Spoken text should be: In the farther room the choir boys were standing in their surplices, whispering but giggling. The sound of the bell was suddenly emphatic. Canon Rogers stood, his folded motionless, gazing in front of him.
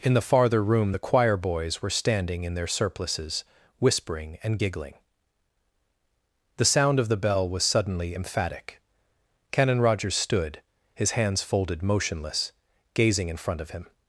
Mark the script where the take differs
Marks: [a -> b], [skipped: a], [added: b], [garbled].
In the farther room the choir boys were standing in their surplices, whispering [but -> and] giggling. The sound of the bell was suddenly emphatic. Canon Rogers stood, his [added: hands] folded motionless, gazing in front of him.